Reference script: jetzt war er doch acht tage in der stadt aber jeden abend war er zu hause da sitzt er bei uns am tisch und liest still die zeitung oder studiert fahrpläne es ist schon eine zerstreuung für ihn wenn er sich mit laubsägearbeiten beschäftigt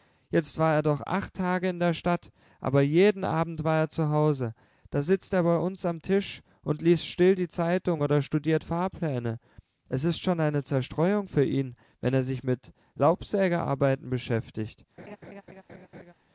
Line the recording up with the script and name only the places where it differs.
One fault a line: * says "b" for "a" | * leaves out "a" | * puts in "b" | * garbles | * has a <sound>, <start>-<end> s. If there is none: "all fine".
* has a laugh, 15.0-16.1 s